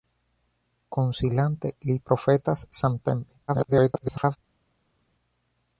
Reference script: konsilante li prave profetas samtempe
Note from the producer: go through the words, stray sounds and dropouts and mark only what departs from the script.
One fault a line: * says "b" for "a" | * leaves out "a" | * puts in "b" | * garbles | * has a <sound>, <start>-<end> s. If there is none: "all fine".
* leaves out "prave"
* garbles